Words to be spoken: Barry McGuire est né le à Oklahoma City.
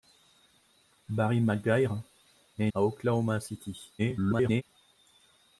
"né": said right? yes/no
no